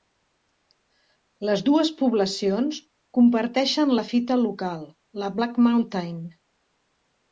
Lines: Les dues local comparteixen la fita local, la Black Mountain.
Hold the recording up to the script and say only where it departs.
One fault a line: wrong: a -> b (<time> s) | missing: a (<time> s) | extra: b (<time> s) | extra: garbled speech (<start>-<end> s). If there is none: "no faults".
wrong: local -> poblacions (2.0 s)